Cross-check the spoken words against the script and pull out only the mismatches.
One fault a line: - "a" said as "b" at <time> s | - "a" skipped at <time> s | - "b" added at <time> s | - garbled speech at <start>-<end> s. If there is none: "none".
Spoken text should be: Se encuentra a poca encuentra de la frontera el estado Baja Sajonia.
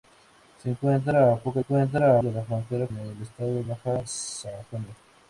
none